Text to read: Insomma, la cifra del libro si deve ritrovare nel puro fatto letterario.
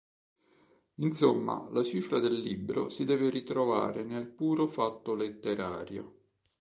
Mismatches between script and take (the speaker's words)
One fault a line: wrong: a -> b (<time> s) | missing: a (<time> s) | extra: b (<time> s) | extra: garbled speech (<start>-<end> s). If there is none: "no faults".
no faults